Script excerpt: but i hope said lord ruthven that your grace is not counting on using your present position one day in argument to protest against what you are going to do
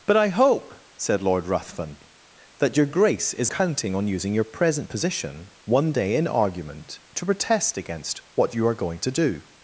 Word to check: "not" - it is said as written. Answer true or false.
false